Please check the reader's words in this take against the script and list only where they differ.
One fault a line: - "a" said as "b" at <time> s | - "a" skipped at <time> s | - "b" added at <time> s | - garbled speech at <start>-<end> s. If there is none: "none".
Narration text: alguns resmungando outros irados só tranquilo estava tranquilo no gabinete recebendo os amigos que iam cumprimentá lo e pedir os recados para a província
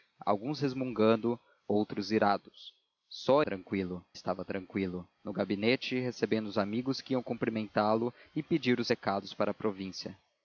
none